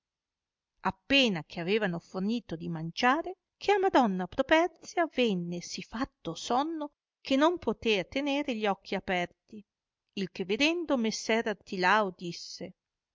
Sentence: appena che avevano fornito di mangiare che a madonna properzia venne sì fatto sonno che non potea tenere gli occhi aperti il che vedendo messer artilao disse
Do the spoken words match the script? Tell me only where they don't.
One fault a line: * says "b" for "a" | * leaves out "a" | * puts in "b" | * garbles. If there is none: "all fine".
all fine